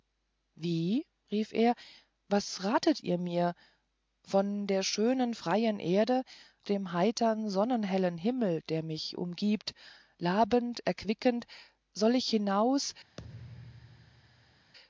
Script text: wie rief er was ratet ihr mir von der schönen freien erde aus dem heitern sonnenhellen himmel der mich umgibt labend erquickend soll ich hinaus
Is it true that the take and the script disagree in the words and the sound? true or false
true